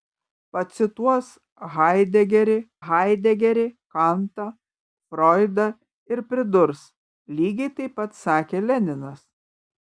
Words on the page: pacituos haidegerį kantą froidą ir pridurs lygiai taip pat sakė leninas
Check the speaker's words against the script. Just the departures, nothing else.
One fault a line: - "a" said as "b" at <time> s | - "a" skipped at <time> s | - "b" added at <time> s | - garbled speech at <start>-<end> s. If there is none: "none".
- "haidegerį" added at 2.9 s